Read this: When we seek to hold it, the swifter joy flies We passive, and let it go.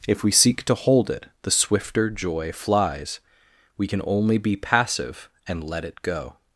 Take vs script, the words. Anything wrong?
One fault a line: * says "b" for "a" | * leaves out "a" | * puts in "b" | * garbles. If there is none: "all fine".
* says "If" for "When"
* puts in "can only be"